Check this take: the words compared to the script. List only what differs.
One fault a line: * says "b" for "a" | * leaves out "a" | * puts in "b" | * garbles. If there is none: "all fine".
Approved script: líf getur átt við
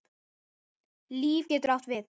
all fine